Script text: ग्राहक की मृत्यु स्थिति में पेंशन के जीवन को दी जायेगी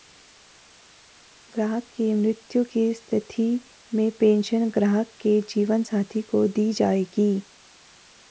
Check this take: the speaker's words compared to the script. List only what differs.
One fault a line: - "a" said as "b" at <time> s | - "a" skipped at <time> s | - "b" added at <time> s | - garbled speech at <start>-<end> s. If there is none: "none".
- "की" added at 2.7 s
- "ग्राहक" added at 4.7 s
- "साथी" added at 5.8 s